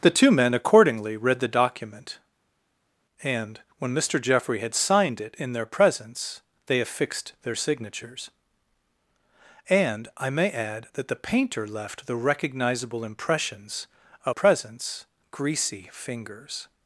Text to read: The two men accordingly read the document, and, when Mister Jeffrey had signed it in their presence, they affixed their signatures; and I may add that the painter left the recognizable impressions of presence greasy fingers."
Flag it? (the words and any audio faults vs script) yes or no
no